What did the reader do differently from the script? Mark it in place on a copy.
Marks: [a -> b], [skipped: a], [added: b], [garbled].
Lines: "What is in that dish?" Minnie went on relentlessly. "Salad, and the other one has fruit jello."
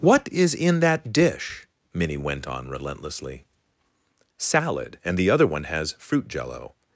"What is in that dish?" Minnie went on relentlessly. "Salad, and the other one has fruit jello."